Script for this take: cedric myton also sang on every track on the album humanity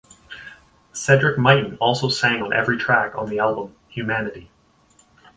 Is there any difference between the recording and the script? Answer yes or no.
no